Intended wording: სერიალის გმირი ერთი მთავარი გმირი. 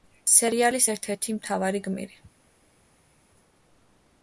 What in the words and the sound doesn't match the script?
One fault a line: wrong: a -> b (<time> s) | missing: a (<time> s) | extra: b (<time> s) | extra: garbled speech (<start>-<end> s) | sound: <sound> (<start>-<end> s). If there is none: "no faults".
wrong: გმირი -> ერთ (0.9 s)